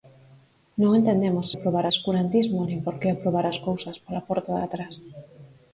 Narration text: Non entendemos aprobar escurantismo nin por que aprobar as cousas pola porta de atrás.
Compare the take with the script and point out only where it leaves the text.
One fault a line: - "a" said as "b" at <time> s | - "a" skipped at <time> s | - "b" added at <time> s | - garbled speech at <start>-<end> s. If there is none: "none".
none